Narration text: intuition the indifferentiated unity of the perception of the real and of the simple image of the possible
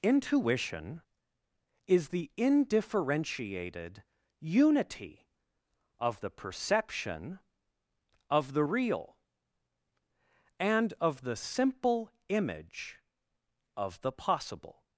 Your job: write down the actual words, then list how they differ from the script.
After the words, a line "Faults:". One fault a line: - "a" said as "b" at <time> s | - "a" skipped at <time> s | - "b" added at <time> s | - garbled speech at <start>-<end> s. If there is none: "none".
intuition is the indifferentiated unity of the perception of the real and of the simple image of the possible
Faults:
- "is" added at 1.9 s